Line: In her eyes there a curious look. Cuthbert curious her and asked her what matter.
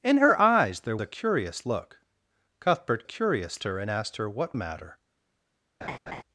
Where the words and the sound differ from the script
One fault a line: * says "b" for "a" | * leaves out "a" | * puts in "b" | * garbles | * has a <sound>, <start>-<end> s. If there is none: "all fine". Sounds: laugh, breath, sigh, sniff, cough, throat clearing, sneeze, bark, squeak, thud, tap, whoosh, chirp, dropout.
* has a laugh, 5.8-6.2 s